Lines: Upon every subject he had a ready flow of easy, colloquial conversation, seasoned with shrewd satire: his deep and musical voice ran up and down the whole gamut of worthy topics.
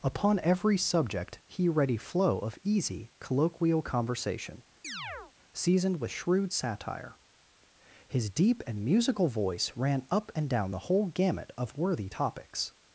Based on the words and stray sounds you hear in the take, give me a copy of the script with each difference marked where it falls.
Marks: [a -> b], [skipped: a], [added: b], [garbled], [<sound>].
Upon every subject he [skipped: had a] ready flow of easy, colloquial conversation, [chirp] seasoned with shrewd satire: his deep and musical voice ran up and down the whole gamut of worthy topics.